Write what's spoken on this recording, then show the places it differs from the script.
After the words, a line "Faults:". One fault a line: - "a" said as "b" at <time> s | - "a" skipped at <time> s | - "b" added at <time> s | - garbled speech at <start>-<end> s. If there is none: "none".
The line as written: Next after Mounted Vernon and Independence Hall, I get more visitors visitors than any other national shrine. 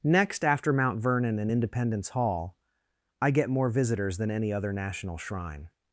Next after Mount Vernon and Independence Hall, I get more visitors than any other national shrine.
Faults:
- "Mounted" said as "Mount" at 0.7 s
- "visitors" skipped at 4.2 s